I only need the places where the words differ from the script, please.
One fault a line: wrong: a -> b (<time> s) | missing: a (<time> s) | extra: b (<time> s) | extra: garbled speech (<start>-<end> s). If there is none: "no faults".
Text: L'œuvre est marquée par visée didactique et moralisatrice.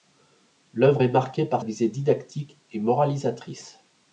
no faults